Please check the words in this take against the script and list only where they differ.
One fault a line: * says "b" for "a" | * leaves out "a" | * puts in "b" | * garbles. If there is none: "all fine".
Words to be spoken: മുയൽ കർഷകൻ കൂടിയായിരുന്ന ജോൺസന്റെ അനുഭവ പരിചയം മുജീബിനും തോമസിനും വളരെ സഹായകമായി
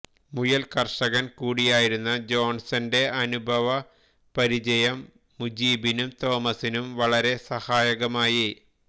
all fine